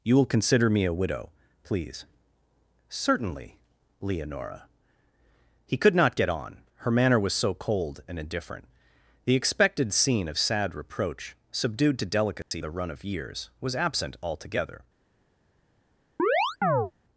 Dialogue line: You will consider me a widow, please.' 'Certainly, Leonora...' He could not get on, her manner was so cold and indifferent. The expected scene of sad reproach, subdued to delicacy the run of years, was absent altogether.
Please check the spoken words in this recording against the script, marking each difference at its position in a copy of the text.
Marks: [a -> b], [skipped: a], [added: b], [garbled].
You will consider me a widow, please.' 'Certainly, Leonora...' He could not get on, her manner was so cold and indifferent. The expected scene of sad reproach, subdued to delicacy the run of years, was absent altogether.